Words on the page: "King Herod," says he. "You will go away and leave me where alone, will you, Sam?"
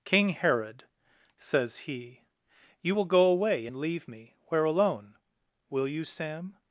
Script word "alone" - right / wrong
right